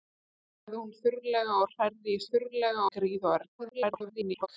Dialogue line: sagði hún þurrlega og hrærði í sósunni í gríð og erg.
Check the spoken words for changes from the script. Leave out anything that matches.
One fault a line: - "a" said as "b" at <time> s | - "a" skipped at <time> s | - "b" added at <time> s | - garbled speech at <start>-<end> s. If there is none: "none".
- "sósunni" said as "þurrlega" at 2.3 s
- garbled speech at 3.6-4.5 s